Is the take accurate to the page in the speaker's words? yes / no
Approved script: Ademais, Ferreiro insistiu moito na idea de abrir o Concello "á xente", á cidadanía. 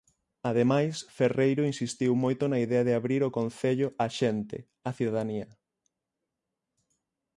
yes